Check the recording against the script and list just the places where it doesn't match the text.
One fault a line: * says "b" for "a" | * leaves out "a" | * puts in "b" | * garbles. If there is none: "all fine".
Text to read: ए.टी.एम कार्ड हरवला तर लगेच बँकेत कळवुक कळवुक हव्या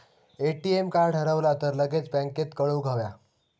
* leaves out "कळवुक"